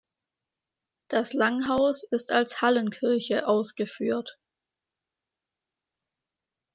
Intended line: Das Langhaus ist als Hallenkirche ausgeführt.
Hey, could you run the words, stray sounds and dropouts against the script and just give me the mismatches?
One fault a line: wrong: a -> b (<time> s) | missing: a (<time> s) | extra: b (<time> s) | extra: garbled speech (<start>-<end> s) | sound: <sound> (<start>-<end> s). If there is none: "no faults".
no faults